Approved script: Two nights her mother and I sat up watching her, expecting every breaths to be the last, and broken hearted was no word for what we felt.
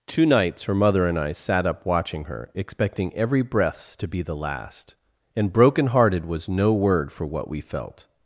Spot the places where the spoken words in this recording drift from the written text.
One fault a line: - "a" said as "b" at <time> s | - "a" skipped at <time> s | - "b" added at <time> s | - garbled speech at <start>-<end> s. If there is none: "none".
none